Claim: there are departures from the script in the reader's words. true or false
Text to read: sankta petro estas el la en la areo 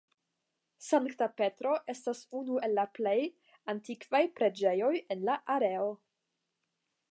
true